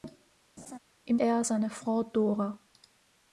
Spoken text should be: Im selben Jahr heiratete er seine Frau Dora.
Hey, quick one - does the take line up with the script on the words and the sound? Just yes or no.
no